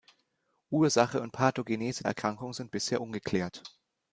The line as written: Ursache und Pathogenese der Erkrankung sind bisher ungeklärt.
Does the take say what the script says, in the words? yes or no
no